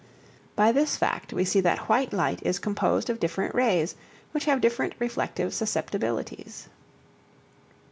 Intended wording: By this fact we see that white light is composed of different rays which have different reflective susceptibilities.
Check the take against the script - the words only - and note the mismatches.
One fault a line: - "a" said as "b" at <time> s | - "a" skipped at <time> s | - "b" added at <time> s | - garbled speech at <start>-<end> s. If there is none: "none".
none